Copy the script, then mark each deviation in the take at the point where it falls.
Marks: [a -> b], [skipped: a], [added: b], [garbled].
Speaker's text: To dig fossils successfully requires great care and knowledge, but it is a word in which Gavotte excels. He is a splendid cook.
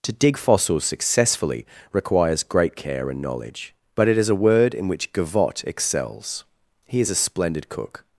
To dig fossils successfully requires great care and knowledge, but it is a word in which Gavotte excels. He is a splendid cook.